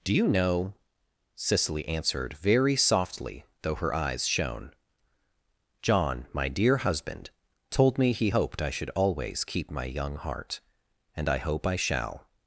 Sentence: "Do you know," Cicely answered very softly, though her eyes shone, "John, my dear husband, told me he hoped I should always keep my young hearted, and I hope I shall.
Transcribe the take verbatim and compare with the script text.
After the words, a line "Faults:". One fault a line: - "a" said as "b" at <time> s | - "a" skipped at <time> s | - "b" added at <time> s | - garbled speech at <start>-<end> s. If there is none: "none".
"Do you know," Cicely answered very softly, though her eyes shone, "John, my dear husband, told me he hoped I should always keep my young heart, and I hope I shall.
Faults:
- "hearted" said as "heart" at 10.2 s